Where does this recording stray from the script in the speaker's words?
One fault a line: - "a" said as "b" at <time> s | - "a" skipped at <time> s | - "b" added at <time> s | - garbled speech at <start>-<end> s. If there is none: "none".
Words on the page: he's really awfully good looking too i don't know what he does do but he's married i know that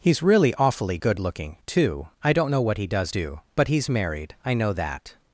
none